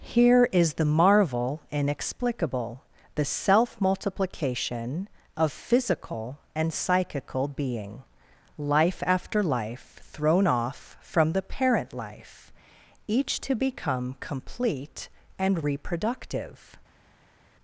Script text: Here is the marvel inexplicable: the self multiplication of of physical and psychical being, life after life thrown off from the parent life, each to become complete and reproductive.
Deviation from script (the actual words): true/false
true